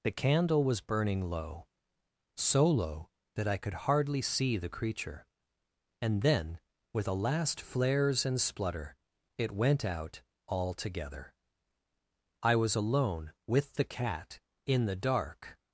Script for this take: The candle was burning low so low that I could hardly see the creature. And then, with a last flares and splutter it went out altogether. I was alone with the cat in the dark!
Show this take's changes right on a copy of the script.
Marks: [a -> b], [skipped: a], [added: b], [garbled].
The candle was burning low so low that I could hardly see the creature. And then, with a last flares and splutter it went out altogether. I was alone with the cat in the dark!